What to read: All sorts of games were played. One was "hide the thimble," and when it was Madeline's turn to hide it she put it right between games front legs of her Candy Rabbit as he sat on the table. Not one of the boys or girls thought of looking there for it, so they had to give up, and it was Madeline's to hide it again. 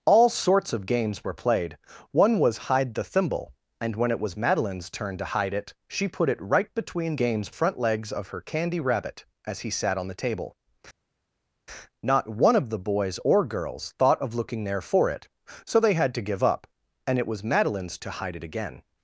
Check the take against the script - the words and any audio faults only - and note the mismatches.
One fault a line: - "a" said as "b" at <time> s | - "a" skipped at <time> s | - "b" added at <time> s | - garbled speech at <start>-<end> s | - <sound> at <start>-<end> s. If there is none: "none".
none